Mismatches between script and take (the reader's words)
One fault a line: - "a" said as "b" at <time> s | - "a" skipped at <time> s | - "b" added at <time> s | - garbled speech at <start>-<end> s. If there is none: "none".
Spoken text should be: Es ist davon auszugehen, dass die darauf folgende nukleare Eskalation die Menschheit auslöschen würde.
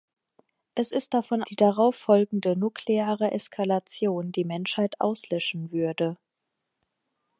- "auszugehen dass" skipped at 1.4 s